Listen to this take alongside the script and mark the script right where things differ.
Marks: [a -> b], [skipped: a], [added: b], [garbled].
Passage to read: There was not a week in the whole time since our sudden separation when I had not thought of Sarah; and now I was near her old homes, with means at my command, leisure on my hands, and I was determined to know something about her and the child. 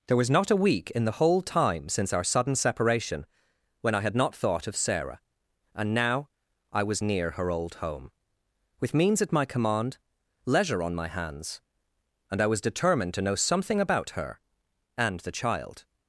There was not a week in the whole time since our sudden separation when I had not thought of Sarah; and now I was near her old [homes, -> home] with means at my command, leisure on my hands, and I was determined to know something about her and the child.